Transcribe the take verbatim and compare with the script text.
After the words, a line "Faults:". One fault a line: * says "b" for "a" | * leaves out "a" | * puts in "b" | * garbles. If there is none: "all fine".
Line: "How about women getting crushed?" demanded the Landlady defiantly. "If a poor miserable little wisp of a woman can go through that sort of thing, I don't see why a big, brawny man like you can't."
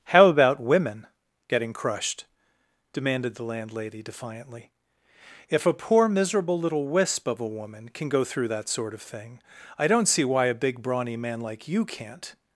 "How about women getting crushed?" demanded the Landlady defiantly. "If a poor miserable little wisp of a woman can go through that sort of thing, I don't see why a big, brawny man like you can't."
Faults:
all fine